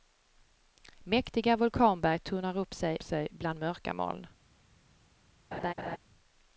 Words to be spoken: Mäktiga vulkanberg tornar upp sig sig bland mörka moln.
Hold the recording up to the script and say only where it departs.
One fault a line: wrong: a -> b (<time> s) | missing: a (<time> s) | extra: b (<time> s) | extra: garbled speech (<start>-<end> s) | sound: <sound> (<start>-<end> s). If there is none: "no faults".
sound: laugh (5.5-6.0 s)